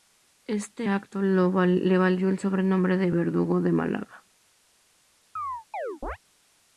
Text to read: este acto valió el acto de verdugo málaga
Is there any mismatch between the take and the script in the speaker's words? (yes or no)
yes